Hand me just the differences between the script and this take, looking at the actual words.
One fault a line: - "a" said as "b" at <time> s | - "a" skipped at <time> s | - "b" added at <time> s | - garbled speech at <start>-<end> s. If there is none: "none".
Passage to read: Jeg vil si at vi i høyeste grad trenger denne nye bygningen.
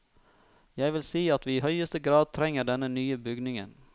none